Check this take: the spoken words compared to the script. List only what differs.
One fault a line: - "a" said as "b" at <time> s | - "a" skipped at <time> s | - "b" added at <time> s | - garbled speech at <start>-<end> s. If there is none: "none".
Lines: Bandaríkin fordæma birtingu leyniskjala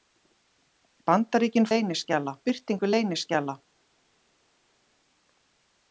- "fordæma" said as "leyniskjala" at 1.7 s